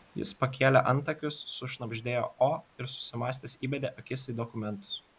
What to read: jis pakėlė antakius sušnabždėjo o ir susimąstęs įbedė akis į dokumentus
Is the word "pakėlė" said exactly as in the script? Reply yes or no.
yes